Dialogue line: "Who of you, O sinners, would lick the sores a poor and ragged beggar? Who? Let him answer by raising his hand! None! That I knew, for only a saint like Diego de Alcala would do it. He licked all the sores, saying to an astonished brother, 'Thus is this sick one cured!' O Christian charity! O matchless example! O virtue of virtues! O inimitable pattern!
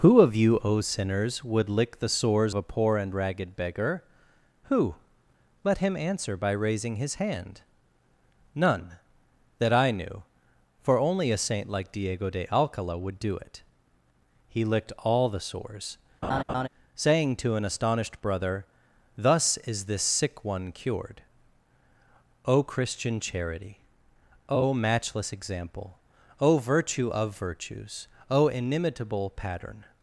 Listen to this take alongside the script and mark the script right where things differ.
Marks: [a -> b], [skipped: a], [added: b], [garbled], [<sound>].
"Who of you, O sinners, would lick the sores a poor and ragged beggar? Who? Let him answer by raising his hand! None! That I knew, for only a saint like Diego de Alcala would do it. He licked all the sores, [laugh] saying to an astonished brother, 'Thus is this sick one cured!' O Christian charity! O matchless example! O virtue of virtues! O inimitable pattern!